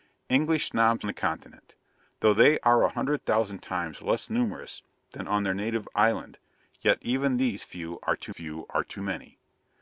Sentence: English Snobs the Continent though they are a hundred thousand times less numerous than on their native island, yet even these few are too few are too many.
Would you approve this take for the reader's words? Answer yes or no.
yes